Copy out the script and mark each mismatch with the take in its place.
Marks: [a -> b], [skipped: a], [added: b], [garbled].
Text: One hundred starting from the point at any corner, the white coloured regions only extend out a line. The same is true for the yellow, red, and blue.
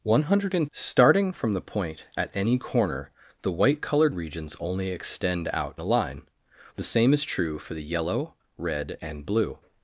One hundred starting from the point at any corner, the white coloured regions only extend out a line. The same is true for the yellow, red, and blue.